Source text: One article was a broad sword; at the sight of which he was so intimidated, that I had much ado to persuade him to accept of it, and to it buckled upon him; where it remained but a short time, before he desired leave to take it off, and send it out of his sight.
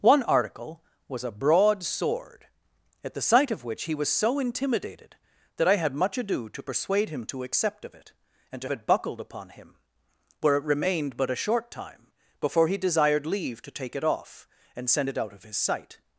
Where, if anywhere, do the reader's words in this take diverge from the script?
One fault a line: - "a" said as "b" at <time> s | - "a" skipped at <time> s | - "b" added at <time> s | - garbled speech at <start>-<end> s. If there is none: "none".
none